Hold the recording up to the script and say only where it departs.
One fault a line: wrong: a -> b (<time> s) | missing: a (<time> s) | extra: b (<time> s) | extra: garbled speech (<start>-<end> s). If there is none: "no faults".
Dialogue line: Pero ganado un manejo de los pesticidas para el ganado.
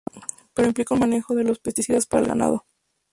wrong: ganado -> implica (0.7 s)